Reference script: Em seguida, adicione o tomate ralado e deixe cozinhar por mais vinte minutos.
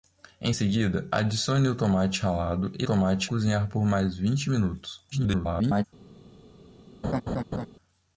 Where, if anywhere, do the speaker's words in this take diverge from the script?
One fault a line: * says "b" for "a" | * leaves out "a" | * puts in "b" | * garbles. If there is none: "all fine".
* says "tomate" for "deixe"
* garbles